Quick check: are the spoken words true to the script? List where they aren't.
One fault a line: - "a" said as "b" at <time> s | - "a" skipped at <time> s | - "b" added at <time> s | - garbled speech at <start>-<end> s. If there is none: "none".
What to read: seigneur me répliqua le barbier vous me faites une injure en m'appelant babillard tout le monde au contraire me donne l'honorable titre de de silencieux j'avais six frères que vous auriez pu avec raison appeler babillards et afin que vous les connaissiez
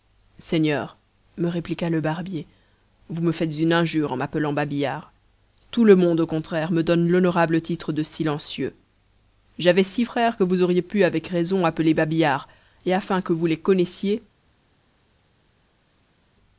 - "de" skipped at 8.0 s